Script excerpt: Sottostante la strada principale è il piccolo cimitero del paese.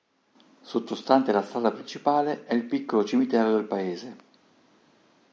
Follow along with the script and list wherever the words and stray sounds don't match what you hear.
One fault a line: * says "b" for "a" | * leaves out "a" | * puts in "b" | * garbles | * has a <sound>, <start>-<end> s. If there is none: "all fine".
all fine